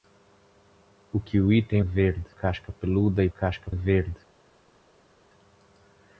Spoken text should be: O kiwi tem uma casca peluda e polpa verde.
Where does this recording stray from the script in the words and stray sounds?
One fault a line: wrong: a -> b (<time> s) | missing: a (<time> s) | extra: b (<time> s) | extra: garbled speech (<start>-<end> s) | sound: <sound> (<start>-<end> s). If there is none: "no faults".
wrong: uma -> verde (1.8 s)
wrong: polpa -> casca (3.3 s)